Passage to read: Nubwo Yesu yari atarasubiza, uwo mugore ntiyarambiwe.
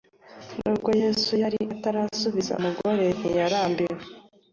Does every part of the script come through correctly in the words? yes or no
no